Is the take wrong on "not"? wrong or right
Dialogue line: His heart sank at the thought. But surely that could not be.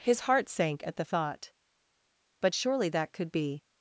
wrong